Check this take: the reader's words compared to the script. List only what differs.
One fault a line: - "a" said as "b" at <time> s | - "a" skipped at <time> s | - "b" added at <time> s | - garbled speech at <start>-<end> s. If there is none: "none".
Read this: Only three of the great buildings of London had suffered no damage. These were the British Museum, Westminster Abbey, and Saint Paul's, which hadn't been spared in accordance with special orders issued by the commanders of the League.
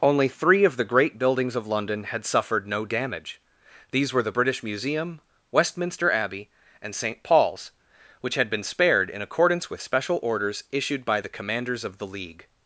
- "hadn't" said as "had" at 8.3 s